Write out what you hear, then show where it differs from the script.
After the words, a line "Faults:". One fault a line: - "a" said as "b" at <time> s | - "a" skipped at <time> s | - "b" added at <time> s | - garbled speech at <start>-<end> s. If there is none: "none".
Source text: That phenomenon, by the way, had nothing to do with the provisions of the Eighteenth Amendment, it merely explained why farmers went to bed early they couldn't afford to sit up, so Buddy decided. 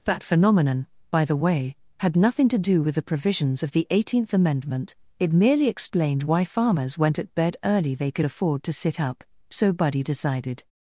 That phenomenon, by the way, had nothing to do with the provisions of the Eighteenth Amendment, it merely explained why farmers went at bed early they could afford to sit up, so Buddy decided.
Faults:
- "to" said as "at" at 7.2 s
- "couldn't" said as "could" at 8.1 s